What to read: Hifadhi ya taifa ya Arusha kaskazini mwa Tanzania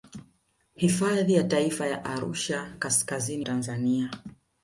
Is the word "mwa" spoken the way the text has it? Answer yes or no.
no